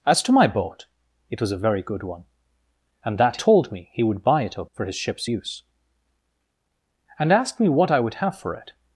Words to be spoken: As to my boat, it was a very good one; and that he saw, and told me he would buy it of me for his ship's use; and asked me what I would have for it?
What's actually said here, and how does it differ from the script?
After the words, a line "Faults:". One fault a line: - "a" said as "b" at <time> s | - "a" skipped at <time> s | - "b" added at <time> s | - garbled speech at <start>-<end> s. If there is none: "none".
As to my boat, it was a very good one; and that told me he would buy it of for his ship's use; and asked me what I would have for it?
Faults:
- "he saw and" skipped at 3.4 s
- "me" skipped at 4.7 s